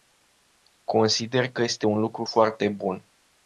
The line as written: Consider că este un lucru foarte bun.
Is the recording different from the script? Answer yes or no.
no